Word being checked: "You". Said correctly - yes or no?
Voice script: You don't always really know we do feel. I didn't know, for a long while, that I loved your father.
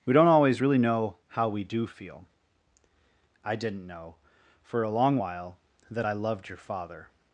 no